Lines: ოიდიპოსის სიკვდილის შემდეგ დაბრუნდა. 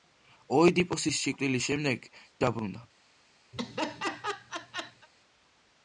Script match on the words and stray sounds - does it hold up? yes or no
no